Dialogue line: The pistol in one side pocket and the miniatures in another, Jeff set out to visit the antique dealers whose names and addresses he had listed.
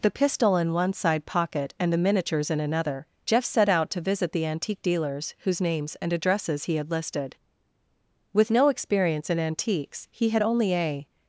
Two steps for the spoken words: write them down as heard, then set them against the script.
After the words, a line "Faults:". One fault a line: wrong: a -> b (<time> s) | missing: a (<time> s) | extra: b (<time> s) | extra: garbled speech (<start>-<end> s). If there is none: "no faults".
The pistol in one side pocket and the miniatures in another, Jeff set out to visit the antique dealers whose names and addresses he had listed. With no experience in antiques, he had only a
Faults:
extra: With no experience in antiques he had only a (8.3 s)